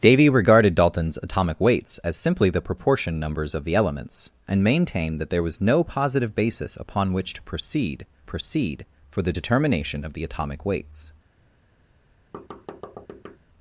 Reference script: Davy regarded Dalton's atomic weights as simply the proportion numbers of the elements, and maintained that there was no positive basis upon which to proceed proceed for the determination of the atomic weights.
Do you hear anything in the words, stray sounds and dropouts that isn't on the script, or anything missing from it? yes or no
yes